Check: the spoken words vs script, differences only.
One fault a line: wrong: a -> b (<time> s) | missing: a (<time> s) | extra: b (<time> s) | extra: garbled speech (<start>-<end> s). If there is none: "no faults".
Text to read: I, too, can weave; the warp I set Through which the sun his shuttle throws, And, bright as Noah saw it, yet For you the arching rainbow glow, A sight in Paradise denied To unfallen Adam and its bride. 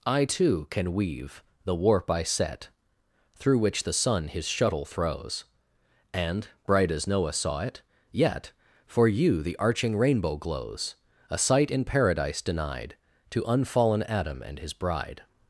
wrong: glow -> glows (10.4 s)
wrong: its -> his (14.6 s)